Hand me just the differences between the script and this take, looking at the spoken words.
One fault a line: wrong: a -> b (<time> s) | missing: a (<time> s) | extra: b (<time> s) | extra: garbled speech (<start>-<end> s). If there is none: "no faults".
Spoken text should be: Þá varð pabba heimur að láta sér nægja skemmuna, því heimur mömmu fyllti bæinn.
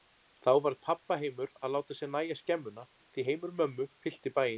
no faults